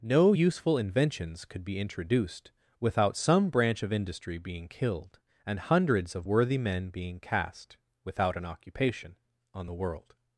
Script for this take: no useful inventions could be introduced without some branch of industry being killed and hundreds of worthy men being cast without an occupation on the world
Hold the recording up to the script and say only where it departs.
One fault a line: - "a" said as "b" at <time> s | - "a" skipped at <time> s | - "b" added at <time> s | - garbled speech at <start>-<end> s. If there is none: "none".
none